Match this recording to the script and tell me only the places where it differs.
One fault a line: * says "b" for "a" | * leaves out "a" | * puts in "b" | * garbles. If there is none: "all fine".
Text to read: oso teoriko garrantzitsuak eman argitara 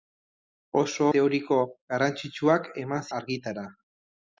all fine